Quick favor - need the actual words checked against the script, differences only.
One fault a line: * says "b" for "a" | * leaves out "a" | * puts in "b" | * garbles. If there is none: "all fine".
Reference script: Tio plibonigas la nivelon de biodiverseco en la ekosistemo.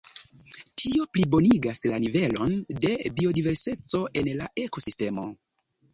all fine